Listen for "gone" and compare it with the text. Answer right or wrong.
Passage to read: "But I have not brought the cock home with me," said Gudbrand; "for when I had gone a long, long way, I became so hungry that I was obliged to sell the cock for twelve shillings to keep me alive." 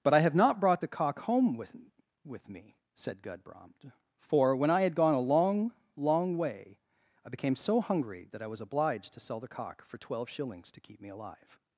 right